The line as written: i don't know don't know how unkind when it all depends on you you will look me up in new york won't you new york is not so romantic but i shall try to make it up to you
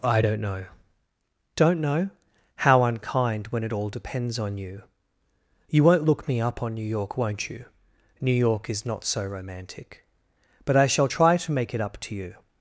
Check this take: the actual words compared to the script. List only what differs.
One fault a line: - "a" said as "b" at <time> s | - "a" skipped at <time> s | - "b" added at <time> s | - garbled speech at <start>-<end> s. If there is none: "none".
- "will" said as "won't" at 5.8 s
- "in" said as "on" at 6.6 s